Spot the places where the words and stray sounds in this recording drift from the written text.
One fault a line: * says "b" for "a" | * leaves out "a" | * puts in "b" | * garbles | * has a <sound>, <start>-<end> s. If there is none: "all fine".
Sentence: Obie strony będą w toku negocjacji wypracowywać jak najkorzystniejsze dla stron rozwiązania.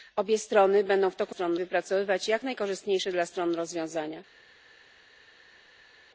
* says "stron" for "negocjacji"